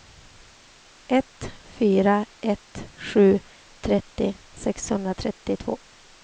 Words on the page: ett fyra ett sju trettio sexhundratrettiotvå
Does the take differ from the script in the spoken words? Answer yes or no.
no